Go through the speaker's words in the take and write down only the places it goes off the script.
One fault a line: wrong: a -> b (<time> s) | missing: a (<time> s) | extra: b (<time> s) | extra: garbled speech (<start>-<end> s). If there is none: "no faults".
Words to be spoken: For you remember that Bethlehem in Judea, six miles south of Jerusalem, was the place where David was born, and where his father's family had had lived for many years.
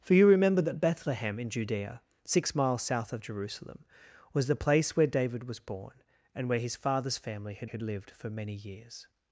no faults